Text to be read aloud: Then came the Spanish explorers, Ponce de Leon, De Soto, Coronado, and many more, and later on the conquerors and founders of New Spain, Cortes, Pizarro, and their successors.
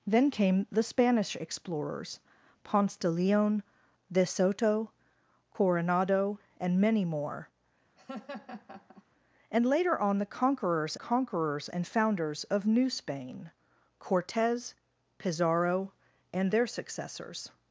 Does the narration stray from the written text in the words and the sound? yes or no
yes